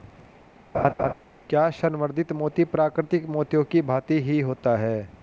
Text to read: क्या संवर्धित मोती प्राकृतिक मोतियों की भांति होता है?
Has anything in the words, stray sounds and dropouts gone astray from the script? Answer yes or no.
yes